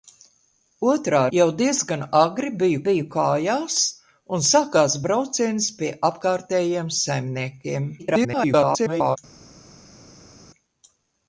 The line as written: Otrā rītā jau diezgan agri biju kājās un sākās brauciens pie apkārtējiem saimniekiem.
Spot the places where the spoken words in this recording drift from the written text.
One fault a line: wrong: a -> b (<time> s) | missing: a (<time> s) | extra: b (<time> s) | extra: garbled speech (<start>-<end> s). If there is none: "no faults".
missing: rītā (1.2 s)
extra: biju (2.9 s)
extra: garbled speech (8.0-9.2 s)